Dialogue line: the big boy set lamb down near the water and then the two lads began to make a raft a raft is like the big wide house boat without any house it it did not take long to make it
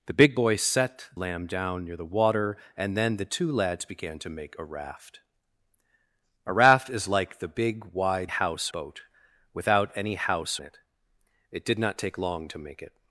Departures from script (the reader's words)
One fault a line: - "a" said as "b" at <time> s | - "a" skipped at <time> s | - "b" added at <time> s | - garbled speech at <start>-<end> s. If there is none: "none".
none